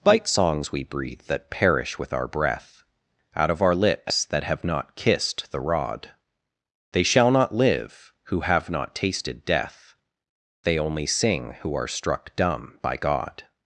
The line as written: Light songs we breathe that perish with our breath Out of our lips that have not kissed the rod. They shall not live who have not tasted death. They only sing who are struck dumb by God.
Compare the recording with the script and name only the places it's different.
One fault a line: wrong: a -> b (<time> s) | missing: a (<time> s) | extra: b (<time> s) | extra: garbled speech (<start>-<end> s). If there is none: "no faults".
wrong: Light -> Bite (0.0 s)